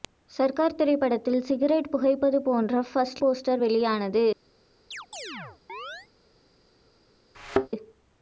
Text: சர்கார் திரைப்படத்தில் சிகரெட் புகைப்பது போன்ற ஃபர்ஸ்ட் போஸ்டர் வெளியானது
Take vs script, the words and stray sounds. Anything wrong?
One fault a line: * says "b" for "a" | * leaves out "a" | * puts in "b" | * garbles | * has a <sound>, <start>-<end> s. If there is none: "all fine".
* has a chirp, 4.9-6.1 s
* has a thud, 7.3-7.7 s